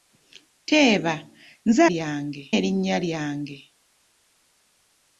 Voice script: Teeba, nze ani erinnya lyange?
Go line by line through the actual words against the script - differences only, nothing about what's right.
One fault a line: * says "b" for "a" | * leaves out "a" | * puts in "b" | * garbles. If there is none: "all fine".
* says "lyange" for "ani"